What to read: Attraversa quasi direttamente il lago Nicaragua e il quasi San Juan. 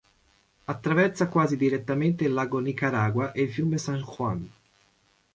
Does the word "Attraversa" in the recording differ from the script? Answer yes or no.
no